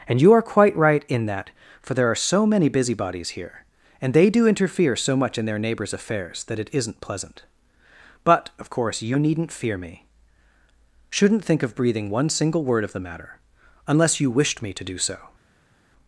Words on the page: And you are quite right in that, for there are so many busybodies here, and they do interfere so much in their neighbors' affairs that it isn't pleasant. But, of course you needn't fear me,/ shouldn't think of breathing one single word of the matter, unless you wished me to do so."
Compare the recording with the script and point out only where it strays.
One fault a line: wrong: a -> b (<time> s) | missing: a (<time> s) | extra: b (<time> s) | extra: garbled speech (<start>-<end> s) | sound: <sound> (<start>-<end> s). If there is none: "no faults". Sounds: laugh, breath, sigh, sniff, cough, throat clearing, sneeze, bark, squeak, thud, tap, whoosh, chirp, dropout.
no faults